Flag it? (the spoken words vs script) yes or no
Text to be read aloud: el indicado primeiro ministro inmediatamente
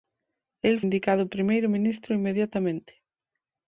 no